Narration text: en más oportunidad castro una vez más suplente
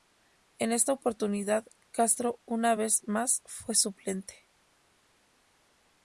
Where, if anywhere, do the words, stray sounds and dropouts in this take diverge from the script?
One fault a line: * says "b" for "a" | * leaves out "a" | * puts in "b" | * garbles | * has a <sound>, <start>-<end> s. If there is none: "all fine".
* says "esta" for "más"
* puts in "fue"